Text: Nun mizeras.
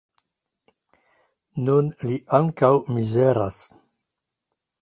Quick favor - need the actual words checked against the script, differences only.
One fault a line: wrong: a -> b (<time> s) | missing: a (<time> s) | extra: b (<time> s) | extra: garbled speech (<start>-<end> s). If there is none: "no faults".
extra: li ankaŭ (2.1 s)